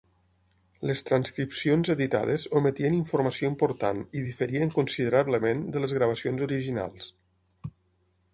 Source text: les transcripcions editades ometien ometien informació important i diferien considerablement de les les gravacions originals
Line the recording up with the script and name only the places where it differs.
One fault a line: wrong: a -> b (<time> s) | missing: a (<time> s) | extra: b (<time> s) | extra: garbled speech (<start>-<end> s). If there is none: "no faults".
missing: ometien (3.0 s)
missing: les (6.0 s)